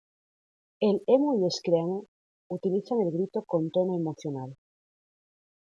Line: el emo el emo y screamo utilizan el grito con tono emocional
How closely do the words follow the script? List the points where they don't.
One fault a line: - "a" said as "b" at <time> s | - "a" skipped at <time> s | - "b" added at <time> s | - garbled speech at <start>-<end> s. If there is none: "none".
- "el emo" skipped at 1.4 s